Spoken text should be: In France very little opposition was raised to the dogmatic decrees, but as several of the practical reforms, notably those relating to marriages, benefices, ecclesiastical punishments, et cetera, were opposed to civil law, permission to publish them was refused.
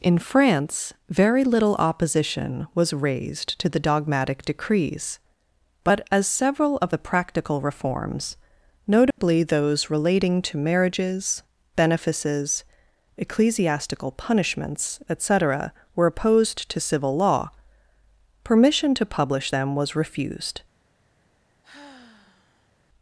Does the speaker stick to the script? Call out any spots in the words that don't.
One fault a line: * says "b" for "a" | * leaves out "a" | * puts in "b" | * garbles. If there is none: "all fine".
all fine